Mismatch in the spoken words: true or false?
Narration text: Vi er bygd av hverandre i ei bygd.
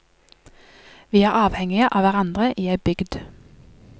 true